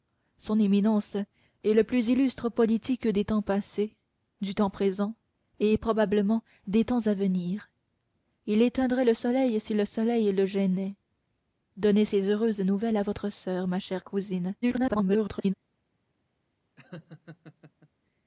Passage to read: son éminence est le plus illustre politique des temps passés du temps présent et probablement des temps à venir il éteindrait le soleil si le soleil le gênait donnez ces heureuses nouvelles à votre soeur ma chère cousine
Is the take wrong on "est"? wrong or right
right